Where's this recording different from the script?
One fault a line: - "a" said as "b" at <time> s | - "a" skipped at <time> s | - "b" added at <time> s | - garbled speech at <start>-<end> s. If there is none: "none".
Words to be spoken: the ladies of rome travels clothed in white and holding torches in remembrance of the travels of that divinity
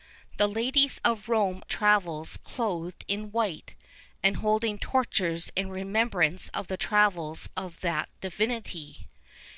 none